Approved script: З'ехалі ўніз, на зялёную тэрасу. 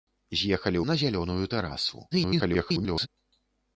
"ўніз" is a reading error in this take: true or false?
true